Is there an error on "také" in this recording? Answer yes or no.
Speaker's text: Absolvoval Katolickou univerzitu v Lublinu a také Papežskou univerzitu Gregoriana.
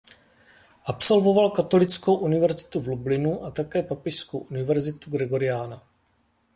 no